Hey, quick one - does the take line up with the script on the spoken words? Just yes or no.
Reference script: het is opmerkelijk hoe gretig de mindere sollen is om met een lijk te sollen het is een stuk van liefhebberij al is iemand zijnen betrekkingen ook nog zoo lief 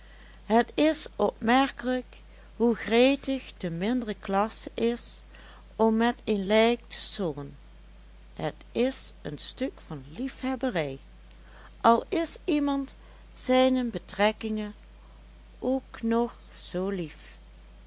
no